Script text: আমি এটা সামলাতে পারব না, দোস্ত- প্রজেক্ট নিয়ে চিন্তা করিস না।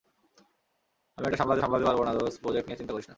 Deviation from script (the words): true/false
true